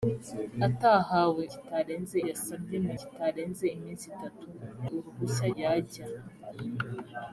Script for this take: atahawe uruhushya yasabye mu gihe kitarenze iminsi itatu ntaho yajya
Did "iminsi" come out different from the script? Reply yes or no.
no